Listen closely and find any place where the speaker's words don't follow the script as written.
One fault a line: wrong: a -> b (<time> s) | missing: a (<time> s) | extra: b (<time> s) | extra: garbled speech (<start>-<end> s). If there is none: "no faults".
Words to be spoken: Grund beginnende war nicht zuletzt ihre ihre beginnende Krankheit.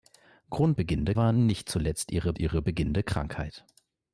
no faults